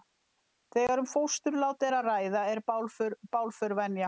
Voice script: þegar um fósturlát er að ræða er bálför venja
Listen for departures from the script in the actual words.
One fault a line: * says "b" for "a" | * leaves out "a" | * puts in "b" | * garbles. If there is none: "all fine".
all fine